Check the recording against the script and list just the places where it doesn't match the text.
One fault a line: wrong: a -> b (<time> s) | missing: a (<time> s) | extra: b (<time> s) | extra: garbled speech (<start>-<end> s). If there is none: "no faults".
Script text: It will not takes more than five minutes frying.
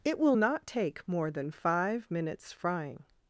wrong: takes -> take (0.7 s)